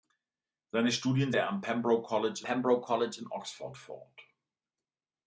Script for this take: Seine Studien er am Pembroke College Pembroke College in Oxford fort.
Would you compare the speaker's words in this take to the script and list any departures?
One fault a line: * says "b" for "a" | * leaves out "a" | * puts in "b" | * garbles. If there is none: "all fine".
all fine